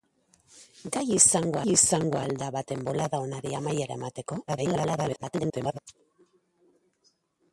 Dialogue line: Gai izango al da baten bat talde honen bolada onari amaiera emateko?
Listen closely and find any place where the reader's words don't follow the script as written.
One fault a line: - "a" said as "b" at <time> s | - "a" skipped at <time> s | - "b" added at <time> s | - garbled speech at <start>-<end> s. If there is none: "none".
- "izango" added at 1.7 s
- "bat talde honen" skipped at 2.8 s
- garbled speech at 4.5-5.8 s